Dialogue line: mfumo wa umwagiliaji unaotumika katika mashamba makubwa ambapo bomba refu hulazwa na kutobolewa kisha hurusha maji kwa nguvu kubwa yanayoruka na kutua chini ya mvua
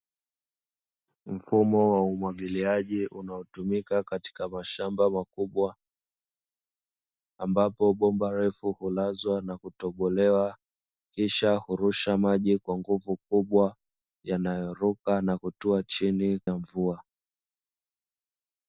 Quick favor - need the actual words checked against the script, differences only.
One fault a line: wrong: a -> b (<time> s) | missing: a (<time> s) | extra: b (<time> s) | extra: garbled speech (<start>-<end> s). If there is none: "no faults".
no faults